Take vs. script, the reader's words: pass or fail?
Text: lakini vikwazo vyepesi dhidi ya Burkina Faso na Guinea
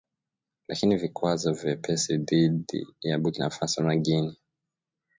pass